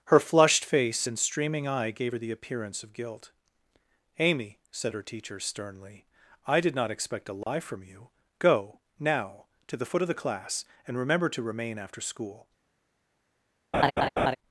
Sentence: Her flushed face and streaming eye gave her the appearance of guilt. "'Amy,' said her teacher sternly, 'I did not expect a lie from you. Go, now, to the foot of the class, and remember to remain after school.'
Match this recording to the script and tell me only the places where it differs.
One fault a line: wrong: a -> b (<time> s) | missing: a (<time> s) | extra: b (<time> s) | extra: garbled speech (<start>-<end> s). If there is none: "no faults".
no faults